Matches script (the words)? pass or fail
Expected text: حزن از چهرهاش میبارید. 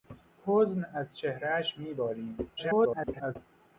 fail